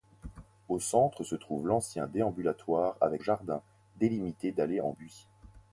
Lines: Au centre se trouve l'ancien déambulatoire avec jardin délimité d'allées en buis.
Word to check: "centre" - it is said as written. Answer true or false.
true